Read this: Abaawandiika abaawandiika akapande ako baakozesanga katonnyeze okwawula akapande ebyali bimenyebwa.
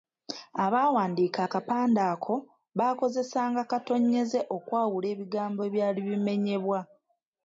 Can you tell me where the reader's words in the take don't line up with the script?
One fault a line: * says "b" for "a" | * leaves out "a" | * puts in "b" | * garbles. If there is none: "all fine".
* leaves out "abaawandiika"
* says "ebigambo" for "akapande"